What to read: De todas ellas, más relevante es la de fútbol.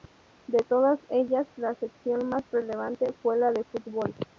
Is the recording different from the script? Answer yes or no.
yes